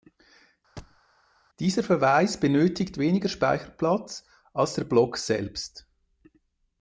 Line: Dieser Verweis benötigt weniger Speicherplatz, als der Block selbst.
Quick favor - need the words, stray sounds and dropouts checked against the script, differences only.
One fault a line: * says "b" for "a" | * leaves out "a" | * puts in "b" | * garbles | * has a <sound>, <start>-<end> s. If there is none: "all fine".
* has a thud, 0.8-1.0 s